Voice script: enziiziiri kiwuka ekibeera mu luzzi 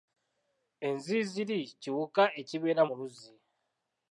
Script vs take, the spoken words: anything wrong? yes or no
no